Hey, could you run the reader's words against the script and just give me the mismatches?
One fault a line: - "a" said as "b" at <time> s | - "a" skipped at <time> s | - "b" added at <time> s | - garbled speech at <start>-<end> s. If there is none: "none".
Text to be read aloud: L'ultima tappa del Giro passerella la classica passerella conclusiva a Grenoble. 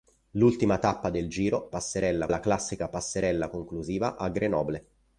none